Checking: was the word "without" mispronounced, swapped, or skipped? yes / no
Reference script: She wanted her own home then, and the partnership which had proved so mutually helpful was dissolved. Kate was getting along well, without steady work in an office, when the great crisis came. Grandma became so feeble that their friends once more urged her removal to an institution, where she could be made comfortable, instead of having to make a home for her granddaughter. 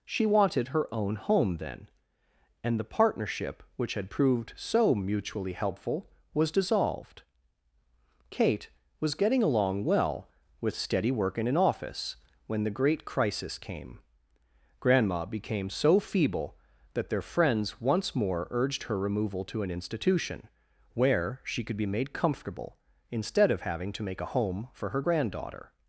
yes